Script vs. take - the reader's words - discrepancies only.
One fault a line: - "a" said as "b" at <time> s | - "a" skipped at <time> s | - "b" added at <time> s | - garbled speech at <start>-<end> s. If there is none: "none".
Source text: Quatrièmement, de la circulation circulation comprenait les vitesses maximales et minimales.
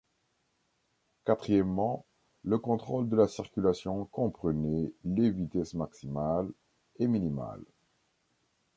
- "le contrôle" added at 2.4 s
- "circulation" skipped at 4.0 s